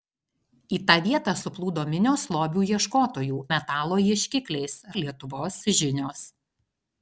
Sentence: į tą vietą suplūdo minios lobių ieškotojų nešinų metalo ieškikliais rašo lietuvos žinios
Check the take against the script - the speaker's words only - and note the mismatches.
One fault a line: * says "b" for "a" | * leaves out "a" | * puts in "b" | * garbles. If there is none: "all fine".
* leaves out "nešinų"
* leaves out "rašo"